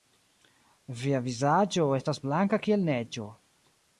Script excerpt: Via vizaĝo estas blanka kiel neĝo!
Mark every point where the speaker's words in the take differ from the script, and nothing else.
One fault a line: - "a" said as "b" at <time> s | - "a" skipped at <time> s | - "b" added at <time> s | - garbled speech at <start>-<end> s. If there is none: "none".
none